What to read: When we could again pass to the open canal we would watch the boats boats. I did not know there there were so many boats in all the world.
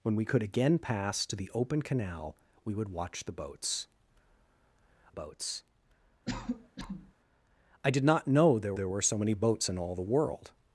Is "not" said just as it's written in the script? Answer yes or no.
yes